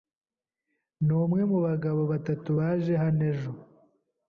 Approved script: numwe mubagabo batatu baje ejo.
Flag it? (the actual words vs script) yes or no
yes